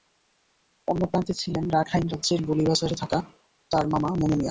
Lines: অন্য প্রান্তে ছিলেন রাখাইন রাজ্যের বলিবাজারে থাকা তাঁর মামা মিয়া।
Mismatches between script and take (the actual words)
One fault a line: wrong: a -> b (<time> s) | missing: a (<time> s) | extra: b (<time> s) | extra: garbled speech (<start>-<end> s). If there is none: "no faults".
extra: মনু (4.2 s)